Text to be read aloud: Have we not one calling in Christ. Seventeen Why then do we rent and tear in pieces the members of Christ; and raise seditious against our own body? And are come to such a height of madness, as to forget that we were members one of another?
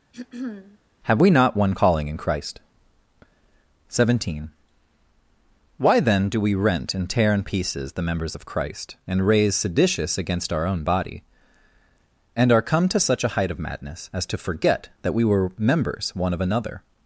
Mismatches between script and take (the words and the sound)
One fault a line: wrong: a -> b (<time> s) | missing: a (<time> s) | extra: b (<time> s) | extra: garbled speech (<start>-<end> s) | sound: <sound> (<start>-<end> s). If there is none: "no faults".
sound: throat clearing (0.1-0.8 s)